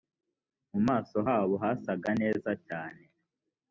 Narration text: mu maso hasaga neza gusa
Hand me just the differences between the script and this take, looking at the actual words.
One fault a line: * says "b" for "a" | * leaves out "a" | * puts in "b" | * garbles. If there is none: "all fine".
* puts in "habo"
* says "cyane" for "gusa"